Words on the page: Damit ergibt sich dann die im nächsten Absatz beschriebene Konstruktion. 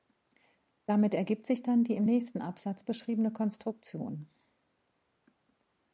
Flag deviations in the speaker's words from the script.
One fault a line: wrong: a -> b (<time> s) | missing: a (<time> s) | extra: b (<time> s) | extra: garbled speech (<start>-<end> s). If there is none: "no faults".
no faults